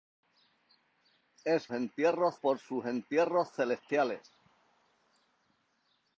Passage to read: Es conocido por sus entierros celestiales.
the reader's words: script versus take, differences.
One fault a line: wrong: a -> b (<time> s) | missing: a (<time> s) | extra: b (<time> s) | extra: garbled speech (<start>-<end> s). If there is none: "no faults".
wrong: conocido -> entierros (1.7 s)